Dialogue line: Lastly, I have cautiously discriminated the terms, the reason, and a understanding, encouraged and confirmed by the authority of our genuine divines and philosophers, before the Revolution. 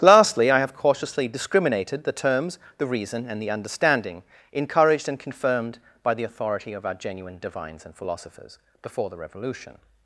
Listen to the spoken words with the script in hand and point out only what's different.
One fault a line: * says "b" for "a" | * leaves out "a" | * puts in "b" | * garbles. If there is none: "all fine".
* says "the" for "a"